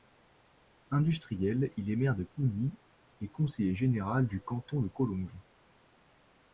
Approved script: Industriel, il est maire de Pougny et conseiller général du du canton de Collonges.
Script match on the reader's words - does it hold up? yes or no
no